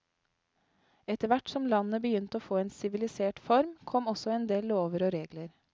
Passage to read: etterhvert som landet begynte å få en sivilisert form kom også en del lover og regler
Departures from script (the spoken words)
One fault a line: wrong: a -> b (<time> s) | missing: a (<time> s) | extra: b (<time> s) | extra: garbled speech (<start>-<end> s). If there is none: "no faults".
no faults